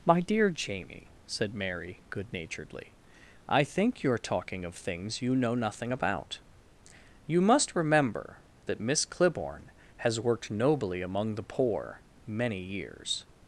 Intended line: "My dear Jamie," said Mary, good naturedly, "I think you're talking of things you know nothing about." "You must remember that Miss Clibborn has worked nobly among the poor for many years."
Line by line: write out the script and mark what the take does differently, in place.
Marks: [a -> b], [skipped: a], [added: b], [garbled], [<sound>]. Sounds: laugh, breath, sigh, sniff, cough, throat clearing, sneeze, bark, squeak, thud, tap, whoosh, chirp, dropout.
"My dear Jamie," said Mary, good naturedly, "I think you're talking of things you know nothing about." "You must remember that Miss Clibborn has worked nobly among the poor [skipped: for] many years."